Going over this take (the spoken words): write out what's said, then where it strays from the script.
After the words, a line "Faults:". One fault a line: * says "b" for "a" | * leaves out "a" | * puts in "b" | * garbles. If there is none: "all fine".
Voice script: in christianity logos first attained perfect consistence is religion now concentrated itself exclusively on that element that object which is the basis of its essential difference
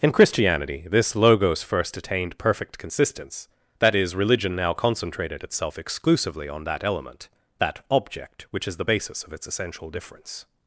in christianity this logos first attained perfect consistence that is religion now concentrated itself exclusively on that element that object which is the basis of its essential difference
Faults:
* puts in "this"
* puts in "that"